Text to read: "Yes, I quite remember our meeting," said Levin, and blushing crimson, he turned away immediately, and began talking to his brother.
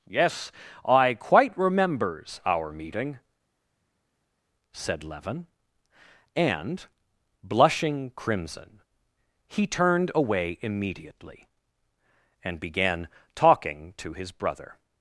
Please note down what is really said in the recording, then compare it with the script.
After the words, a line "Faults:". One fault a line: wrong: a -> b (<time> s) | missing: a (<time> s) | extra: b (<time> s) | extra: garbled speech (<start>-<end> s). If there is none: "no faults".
"Yes, I quite remembers our meeting," said Levin, and blushing crimson, he turned away immediately, and began talking to his brother.
Faults:
wrong: remember -> remembers (1.6 s)